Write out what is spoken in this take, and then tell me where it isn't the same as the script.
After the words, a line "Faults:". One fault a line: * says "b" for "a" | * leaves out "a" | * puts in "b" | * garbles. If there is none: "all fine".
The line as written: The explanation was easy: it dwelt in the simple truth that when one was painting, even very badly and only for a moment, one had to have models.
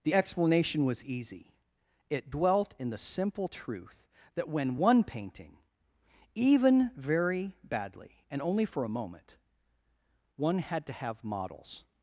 The explanation was easy: it dwelt in the simple truth that when one painting, even very badly and only for a moment, one had to have models.
Faults:
* leaves out "was"